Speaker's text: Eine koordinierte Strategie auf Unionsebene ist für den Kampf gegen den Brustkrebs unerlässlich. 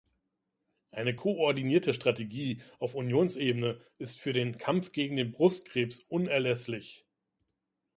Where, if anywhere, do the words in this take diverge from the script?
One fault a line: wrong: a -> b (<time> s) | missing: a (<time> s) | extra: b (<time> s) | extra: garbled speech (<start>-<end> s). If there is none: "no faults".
no faults